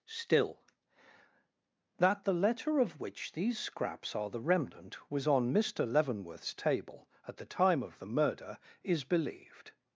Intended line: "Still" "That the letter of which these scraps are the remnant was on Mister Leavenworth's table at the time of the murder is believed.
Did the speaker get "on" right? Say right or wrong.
right